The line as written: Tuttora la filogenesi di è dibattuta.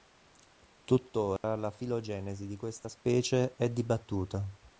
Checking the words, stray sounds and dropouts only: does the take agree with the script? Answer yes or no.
no